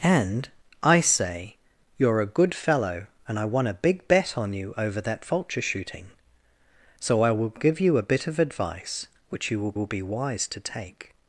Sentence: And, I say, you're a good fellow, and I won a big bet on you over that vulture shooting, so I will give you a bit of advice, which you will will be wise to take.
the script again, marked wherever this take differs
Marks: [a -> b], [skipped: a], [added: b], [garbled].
And, I say, you're a good fellow, and I won a big bet on you over that vulture shooting, so I will give you a bit of advice, which you will will be wise to take.